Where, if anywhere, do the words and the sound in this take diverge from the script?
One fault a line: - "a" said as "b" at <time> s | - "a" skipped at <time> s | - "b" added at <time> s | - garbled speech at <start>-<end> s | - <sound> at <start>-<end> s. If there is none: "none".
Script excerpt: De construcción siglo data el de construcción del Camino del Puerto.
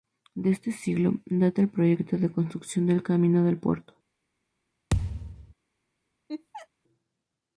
- "construcción" said as "este" at 0.5 s
- "proyecto" added at 1.7 s
- thud at 4.9-5.5 s
- laugh at 6.3-6.7 s